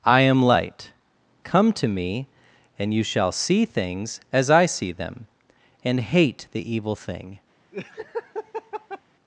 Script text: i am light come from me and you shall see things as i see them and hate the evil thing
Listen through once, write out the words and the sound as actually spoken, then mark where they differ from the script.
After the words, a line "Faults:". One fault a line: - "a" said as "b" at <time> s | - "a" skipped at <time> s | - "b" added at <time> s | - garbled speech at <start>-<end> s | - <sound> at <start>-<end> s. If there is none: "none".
i am light come to me and you shall see things as i see them and hate the evil thing
Faults:
- "from" said as "to" at 1.7 s
- laugh at 7.7-9.0 s